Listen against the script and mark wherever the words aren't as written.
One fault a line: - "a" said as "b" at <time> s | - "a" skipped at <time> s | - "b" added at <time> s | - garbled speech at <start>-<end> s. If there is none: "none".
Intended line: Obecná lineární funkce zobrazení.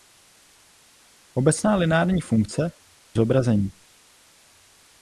none